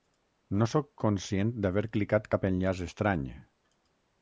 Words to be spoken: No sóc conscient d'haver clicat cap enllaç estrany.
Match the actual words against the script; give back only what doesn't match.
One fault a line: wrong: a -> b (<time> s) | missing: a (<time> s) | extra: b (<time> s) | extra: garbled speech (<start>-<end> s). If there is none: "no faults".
no faults